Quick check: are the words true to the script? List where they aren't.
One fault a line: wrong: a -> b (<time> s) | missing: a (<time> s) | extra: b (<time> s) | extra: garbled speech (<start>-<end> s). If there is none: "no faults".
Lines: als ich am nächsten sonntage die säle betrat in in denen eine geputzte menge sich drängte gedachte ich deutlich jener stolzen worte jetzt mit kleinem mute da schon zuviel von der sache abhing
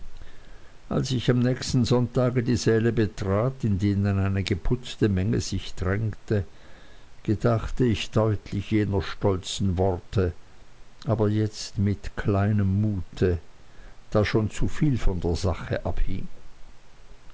missing: in (3.8 s)
extra: aber (11.0 s)